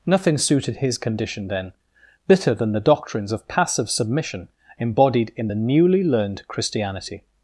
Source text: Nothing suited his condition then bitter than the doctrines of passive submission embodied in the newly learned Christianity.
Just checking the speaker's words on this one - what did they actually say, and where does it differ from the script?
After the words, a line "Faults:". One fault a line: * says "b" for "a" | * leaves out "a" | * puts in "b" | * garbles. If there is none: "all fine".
Nothing suited his condition then bitter than the doctrines of passive submission embodied in the newly learned Christianity.
Faults:
all fine